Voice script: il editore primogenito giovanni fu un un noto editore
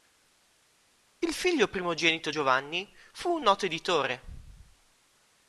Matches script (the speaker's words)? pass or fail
fail